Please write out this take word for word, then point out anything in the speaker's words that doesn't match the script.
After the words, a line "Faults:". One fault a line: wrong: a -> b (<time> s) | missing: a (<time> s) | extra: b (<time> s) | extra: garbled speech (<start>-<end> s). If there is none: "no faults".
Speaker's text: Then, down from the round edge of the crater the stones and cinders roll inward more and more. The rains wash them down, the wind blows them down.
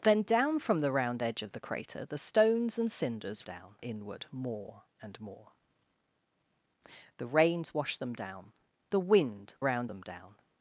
Then, down from the round edge of the crater the stones and cinders down inward more and more. The rains wash them down, the wind round them down.
Faults:
wrong: roll -> down (3.4 s)
wrong: blows -> round (9.6 s)